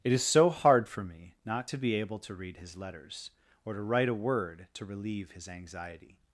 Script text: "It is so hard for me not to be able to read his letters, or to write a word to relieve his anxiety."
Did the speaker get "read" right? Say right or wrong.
right